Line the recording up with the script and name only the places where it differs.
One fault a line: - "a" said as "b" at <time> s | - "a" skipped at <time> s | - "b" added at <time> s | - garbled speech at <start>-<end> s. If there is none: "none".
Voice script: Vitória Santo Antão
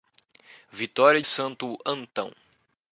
none